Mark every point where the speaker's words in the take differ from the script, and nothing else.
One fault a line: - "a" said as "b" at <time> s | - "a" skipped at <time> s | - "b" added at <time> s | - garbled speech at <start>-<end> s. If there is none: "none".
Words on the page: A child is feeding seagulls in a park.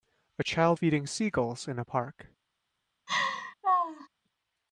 - "is" skipped at 0.8 s